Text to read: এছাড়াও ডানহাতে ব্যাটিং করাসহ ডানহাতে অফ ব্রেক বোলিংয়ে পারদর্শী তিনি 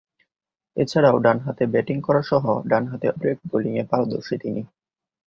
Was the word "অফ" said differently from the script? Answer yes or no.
yes